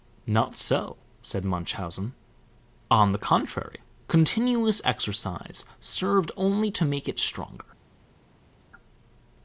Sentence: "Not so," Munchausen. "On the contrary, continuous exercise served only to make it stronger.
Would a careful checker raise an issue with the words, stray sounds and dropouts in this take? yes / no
yes